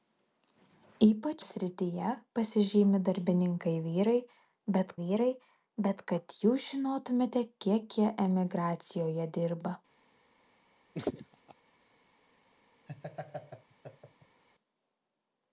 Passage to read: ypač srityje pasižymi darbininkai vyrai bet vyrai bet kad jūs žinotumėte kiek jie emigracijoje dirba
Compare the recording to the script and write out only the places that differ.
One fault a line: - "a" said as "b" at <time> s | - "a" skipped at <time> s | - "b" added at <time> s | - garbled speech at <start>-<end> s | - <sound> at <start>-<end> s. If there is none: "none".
- laugh at 10.9-11.5 s
- laugh at 12.9-14.4 s